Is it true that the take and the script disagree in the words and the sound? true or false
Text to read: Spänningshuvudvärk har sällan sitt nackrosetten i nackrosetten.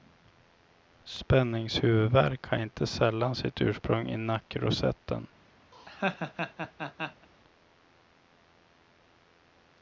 true